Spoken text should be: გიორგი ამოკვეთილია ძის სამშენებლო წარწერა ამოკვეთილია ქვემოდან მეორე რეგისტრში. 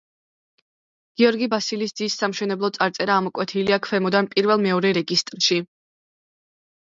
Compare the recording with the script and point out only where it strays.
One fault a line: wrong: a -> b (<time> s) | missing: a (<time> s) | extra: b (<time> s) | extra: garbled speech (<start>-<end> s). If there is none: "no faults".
wrong: ამოკვეთილია -> ბასილის (1.5 s)
extra: პირველ (4.3 s)